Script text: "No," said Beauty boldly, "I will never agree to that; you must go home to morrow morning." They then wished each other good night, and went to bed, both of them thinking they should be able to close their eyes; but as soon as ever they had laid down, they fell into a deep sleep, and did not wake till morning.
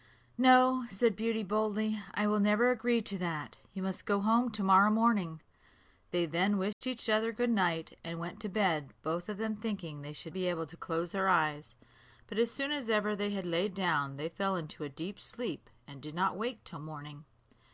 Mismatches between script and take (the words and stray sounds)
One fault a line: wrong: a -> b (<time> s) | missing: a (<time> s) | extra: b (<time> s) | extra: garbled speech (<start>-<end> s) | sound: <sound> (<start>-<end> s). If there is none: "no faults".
sound: dropout (6.7-6.8 s)